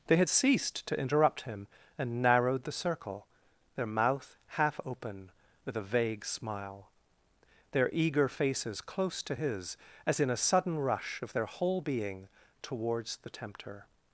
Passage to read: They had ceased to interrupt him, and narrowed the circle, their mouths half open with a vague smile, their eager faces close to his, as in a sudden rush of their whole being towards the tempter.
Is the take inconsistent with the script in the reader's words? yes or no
yes